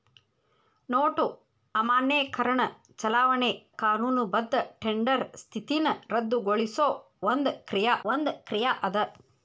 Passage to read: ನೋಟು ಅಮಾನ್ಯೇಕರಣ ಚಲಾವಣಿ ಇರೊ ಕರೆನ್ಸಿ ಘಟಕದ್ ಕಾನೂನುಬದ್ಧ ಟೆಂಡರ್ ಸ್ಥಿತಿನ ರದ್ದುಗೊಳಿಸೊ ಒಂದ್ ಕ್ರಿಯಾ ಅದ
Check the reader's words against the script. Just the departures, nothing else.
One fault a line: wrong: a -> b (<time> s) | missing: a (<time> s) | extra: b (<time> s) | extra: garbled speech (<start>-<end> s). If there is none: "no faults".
missing: ಇರೊ ಕರೆನ್ಸಿ ಘಟಕದ್ (3.5 s)
extra: ಒಂದ್ ಕ್ರಿಯಾ (8.1 s)